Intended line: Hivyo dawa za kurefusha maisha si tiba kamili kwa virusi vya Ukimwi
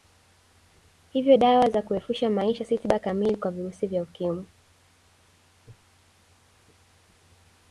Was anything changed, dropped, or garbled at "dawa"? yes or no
no